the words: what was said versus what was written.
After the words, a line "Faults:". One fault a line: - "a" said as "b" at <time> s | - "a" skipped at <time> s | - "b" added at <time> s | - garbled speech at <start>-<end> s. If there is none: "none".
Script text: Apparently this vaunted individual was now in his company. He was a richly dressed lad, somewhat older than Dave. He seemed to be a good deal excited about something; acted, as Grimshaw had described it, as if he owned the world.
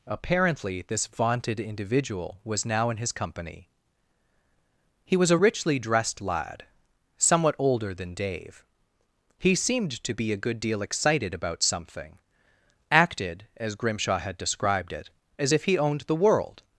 Apparently this vaunted individual was now in his company. He was a richly dressed lad, somewhat older than Dave. He seemed to be a good deal excited about something; acted, as Grimshaw had described it, as if he owned the world.
Faults:
none